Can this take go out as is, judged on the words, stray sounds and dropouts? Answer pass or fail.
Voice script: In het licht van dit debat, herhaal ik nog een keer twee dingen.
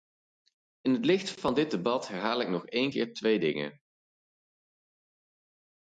pass